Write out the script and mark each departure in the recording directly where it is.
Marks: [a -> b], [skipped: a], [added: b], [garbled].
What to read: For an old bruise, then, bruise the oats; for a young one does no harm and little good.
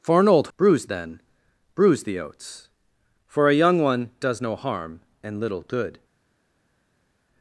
For an old bruise, then, bruise the oats; for a young one does no harm and little good.